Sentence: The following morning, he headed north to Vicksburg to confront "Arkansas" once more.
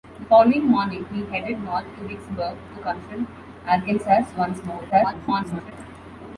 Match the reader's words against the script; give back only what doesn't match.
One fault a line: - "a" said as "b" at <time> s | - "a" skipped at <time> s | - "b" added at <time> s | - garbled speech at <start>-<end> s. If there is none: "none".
- garbled speech at 4.9-5.7 s